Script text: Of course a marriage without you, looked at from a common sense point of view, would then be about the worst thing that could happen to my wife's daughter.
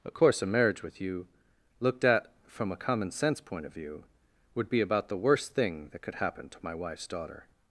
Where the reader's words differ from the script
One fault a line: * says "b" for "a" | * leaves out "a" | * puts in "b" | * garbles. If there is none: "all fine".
* says "with" for "without"
* leaves out "then"